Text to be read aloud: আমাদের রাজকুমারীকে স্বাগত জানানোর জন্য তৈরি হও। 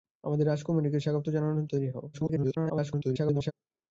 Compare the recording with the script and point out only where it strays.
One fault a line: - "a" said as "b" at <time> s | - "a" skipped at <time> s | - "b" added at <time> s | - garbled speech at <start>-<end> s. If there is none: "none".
- "জন্য" skipped at 1.7 s
- garbled speech at 2.1-3.5 s